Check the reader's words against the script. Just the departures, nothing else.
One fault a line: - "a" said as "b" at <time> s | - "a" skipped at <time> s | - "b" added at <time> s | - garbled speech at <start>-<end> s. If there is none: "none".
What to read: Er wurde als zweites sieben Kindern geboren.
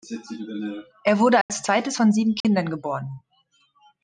- "von" added at 1.9 s